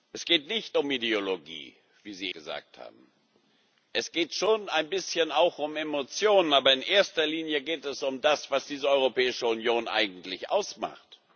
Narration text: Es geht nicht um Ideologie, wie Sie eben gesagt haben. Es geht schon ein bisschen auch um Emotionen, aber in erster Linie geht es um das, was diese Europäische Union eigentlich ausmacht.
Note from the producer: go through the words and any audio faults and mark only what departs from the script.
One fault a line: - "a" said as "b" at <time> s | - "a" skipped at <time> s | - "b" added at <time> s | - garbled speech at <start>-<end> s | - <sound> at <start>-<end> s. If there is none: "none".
- "eben" skipped at 2.3 s